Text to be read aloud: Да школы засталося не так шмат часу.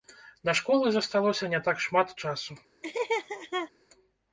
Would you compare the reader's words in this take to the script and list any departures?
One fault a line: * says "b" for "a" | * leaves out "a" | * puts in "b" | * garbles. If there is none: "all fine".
all fine